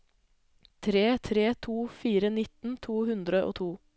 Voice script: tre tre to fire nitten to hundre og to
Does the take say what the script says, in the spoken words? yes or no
yes